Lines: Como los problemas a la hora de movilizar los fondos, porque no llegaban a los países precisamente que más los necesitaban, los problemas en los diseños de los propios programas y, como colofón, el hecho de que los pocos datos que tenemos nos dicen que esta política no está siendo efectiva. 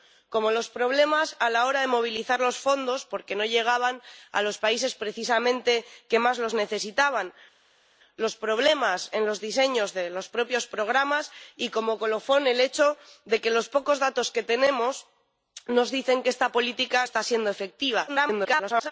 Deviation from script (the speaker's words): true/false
true